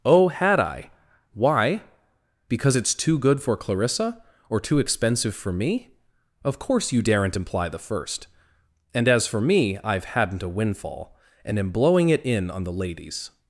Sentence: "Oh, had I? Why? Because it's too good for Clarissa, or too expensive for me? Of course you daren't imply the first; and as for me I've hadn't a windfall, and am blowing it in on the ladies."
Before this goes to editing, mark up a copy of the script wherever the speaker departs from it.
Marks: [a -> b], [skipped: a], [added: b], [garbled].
"Oh, had I? Why? Because it's too good for Clarissa, or too expensive for me? Of course you daren't imply the first; and as for me I've hadn't a windfall, and am blowing it in on the ladies."